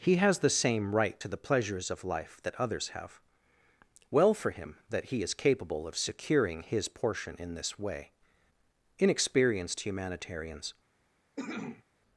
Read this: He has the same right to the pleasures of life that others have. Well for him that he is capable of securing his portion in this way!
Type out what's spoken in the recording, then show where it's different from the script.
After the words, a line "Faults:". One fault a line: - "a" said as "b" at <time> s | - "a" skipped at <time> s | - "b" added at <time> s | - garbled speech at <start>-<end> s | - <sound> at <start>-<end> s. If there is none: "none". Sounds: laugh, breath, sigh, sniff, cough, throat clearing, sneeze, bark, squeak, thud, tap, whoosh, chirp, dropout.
He has the same right to the pleasures of life that others have. Well for him that he is capable of securing his portion in this way! Inexperienced humanitarians
Faults:
- "Inexperienced humanitarians" added at 9.0 s
- cough at 11.4-11.8 s